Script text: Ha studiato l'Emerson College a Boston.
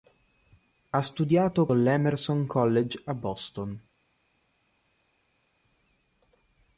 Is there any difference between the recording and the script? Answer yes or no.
no